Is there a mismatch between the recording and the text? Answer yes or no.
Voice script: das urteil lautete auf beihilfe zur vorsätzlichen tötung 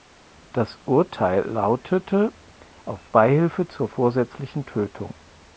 no